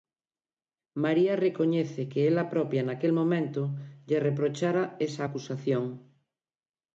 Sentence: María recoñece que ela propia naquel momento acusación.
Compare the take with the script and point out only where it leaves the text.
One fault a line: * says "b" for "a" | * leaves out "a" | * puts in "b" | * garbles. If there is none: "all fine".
* puts in "lle reprochara esa"